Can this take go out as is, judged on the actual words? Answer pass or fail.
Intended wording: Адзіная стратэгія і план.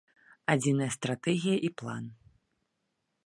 pass